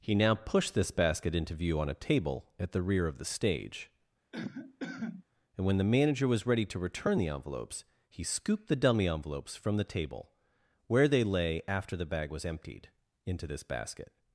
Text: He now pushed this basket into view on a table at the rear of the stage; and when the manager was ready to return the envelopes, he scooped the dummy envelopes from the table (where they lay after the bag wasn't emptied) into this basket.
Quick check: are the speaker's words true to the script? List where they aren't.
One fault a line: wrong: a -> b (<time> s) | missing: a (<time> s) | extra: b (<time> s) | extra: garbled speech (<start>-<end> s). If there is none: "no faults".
wrong: wasn't -> was (12.3 s)